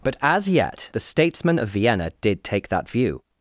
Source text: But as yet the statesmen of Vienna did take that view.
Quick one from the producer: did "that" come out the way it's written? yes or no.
yes